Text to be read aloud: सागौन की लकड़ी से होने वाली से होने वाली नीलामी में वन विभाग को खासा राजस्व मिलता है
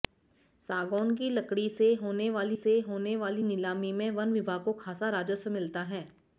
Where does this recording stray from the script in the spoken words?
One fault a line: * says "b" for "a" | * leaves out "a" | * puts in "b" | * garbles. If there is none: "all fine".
all fine